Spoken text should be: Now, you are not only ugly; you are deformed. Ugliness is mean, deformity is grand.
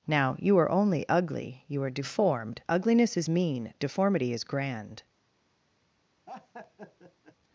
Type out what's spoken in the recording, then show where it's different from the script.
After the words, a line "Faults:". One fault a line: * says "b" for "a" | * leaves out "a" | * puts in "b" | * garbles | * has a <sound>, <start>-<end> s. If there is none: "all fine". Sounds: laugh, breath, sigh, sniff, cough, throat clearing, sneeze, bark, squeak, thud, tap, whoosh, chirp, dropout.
Now, you are only ugly; you are deformed. Ugliness is mean, deformity is grand.
Faults:
* leaves out "not"
* has a laugh, 6.3-7.4 s